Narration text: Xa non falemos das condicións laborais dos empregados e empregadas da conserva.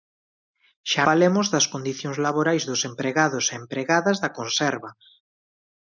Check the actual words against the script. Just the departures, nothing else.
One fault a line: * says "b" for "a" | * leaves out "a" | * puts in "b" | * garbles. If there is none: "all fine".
* leaves out "non"